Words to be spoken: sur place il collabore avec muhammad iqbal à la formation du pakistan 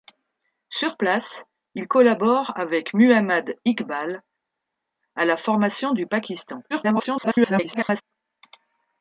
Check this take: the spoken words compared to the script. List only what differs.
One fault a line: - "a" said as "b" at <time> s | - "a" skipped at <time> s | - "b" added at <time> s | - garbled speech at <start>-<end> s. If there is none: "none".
- garbled speech at 6.7-8.0 s